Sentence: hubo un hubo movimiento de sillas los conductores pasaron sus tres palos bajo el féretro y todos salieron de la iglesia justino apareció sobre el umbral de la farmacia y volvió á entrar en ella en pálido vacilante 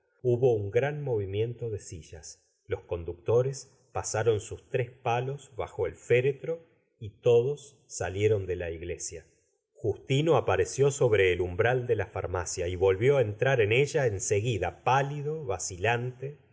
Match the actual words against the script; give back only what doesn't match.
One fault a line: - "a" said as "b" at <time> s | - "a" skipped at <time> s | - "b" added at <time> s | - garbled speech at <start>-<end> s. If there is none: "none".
- "hubo" said as "gran" at 0.7 s
- "seguida" added at 14.2 s